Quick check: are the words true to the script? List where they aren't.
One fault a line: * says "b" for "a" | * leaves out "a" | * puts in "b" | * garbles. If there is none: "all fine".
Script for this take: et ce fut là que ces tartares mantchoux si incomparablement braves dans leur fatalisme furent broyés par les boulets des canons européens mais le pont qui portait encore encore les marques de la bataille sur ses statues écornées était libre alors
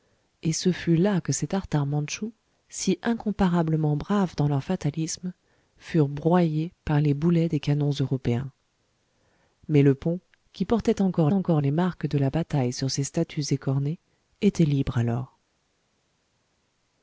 all fine